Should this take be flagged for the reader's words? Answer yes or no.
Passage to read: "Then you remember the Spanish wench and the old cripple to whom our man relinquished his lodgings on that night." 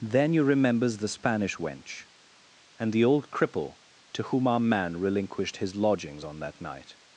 yes